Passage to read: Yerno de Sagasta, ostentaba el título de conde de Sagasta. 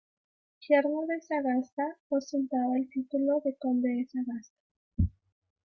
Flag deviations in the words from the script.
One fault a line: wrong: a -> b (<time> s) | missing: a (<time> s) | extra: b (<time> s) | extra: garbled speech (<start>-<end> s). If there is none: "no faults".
no faults